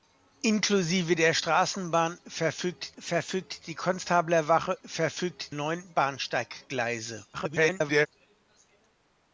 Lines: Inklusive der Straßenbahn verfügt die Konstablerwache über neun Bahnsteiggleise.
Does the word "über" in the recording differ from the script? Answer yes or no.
yes